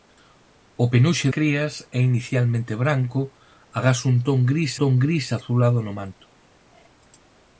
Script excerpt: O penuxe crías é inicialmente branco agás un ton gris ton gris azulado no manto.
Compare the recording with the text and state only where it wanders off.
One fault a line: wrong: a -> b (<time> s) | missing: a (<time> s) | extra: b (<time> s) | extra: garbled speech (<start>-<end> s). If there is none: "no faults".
no faults